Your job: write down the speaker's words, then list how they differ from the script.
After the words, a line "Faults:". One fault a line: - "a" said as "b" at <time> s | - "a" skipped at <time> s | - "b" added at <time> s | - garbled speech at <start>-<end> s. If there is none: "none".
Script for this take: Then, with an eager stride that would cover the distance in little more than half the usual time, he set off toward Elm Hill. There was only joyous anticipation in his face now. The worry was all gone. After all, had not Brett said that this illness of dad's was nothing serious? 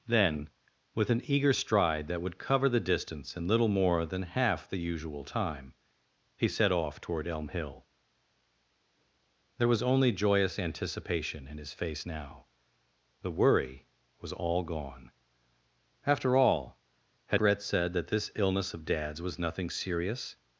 Then, with an eager stride that would cover the distance in little more than half the usual time, he set off toward Elm Hill. There was only joyous anticipation in his face now. The worry was all gone. After all, had Brett said that this illness of dad's was nothing serious?
Faults:
- "not" skipped at 17.4 s